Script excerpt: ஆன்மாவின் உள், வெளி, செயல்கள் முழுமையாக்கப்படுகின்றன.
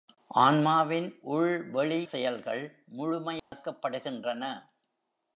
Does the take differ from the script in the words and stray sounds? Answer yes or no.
yes